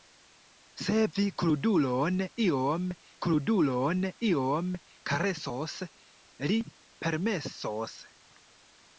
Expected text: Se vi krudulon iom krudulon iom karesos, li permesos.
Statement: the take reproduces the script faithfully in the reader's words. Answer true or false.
true